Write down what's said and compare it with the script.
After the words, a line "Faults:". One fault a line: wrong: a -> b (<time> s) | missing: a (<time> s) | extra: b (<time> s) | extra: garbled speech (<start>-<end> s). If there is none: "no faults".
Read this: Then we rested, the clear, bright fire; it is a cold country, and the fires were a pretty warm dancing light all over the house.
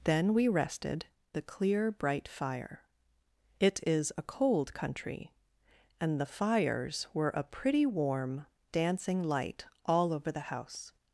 Then we rested, the clear, bright fire; it is a cold country, and the fires were a pretty warm dancing light all over the house.
Faults:
no faults